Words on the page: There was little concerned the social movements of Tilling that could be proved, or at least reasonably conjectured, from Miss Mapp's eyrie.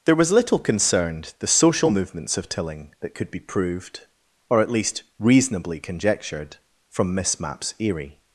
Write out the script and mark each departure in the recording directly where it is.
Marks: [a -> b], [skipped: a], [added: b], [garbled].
There was little concerned the social movements of Tilling that could be proved, or at least reasonably conjectured, from Miss Mapp's eyrie.